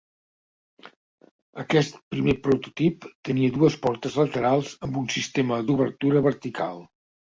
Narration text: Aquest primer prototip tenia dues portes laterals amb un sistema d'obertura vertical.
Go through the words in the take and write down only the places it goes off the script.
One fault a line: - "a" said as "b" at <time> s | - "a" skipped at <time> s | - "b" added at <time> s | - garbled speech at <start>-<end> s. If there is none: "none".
none